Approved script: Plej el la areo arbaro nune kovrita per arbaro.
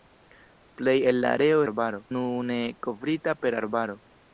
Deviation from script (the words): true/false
false